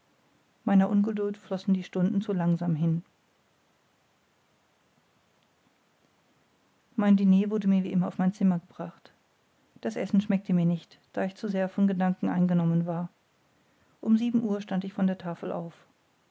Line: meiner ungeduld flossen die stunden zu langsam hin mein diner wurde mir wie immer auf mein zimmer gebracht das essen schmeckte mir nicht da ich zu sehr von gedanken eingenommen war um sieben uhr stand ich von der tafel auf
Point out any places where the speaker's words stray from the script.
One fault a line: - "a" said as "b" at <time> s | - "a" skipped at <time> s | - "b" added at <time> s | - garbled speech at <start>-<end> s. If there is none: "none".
none